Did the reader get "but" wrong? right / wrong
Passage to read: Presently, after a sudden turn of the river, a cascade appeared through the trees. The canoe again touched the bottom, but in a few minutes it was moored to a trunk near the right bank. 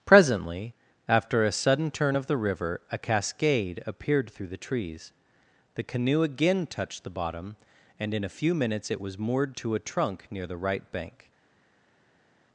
wrong